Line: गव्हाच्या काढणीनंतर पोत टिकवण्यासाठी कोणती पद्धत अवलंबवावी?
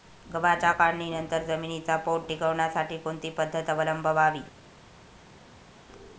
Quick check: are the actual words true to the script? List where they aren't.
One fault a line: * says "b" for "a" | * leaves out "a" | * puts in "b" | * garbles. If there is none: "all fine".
* puts in "जमिनीचा"